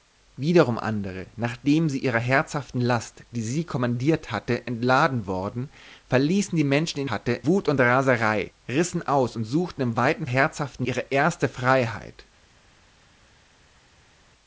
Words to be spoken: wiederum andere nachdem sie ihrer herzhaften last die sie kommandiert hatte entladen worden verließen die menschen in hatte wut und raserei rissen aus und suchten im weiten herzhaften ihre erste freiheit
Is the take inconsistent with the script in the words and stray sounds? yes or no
no